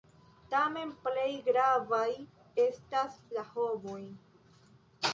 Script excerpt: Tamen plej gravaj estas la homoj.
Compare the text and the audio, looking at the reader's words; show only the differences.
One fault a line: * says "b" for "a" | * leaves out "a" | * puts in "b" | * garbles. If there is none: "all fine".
all fine